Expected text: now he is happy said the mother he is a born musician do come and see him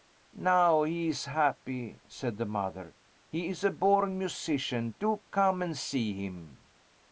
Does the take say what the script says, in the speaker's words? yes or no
yes